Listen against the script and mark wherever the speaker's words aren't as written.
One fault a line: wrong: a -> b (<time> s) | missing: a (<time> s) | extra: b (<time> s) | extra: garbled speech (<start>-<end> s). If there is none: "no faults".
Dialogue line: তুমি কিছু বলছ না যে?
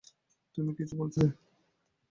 missing: না (1.2 s)